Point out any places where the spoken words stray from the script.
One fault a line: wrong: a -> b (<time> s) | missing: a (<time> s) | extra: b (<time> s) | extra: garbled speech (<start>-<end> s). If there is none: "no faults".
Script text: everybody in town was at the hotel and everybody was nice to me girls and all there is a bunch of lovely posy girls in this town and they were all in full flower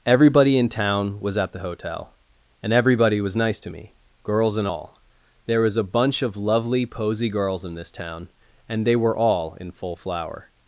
wrong: is -> was (5.6 s)